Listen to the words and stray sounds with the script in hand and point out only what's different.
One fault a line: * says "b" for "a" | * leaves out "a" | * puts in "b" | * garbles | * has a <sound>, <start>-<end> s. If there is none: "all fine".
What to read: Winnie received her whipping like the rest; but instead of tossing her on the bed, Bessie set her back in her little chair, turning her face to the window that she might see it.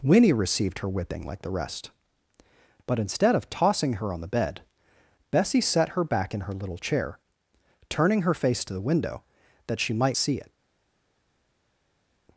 all fine